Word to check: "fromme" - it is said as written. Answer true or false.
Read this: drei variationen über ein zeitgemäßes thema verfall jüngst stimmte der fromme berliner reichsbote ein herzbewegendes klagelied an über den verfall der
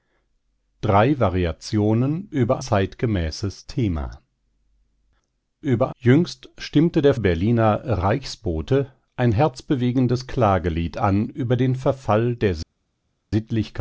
false